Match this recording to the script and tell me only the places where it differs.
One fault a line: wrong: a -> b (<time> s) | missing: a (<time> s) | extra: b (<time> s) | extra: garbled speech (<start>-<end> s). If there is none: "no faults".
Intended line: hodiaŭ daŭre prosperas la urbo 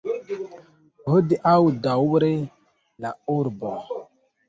missing: prosperas (2.3 s)